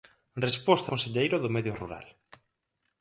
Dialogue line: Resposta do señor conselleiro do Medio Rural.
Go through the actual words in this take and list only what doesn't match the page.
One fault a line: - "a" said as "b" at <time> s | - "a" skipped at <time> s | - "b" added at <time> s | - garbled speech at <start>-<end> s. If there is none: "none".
- "do señor" skipped at 0.9 s